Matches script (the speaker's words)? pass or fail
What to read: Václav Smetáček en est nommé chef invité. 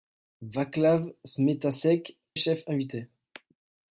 fail